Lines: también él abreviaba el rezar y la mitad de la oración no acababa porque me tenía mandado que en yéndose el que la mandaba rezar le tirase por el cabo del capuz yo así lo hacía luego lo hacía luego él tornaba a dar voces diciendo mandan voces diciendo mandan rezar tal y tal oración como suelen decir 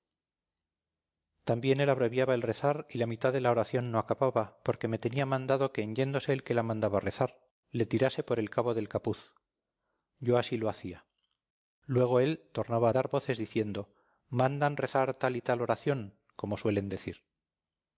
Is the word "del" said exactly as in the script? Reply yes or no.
yes